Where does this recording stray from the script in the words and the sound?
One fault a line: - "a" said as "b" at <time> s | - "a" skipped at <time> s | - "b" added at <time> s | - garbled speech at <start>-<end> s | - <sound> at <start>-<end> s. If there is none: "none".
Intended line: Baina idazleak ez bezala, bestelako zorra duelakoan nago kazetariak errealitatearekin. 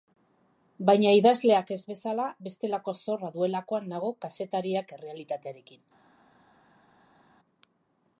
none